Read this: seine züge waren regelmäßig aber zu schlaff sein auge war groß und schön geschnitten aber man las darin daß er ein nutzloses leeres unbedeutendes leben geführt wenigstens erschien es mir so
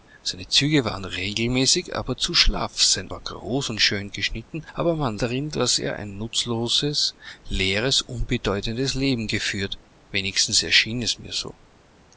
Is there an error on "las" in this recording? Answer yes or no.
yes